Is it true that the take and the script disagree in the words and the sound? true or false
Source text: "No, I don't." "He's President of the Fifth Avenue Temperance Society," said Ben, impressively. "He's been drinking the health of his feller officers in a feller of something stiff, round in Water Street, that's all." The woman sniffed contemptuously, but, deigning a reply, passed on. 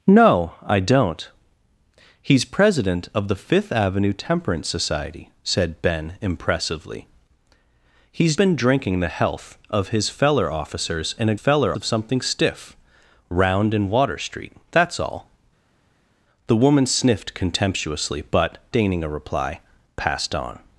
false